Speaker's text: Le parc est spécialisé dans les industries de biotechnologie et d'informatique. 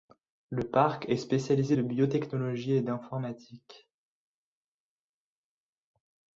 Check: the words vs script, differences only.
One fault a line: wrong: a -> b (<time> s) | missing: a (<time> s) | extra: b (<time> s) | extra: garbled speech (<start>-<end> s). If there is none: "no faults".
missing: dans les industries (1.8 s)